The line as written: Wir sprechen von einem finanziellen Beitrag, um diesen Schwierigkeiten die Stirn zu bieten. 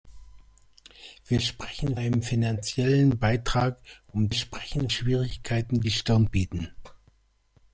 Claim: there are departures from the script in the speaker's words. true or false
true